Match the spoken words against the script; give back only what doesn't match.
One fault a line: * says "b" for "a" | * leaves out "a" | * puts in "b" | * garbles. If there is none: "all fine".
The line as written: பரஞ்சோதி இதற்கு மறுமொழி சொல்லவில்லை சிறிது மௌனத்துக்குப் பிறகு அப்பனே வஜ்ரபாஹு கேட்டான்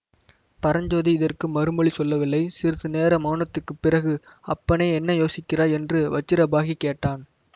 * puts in "நேர"
* puts in "என்ன யோசிக்கிறாய் என்று"